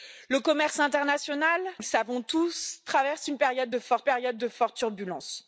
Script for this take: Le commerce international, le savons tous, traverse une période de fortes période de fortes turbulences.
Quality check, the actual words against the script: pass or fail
pass